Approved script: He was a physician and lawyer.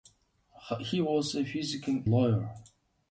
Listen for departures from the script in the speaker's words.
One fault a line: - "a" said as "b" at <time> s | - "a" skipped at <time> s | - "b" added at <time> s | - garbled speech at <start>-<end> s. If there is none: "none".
- "and" skipped at 2.1 s